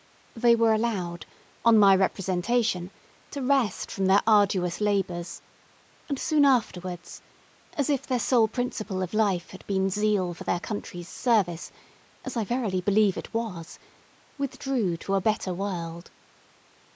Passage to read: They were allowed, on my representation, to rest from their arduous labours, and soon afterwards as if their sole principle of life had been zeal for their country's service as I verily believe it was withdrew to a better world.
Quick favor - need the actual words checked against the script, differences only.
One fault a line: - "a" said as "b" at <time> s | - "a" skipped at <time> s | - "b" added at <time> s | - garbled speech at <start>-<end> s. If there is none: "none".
none